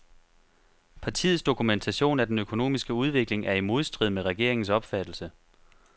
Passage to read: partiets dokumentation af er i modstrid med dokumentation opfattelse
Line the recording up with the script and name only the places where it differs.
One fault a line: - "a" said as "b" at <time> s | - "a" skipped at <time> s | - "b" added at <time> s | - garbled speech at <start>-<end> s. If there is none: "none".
- "den økonomiske udvikling" added at 2.3 s
- "dokumentation" said as "regeringens" at 4.2 s